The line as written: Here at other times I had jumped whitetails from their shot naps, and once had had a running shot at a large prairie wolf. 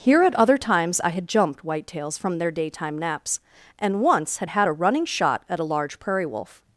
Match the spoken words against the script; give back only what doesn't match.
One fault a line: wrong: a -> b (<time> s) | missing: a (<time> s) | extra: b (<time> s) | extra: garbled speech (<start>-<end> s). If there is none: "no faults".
wrong: shot -> daytime (2.5 s)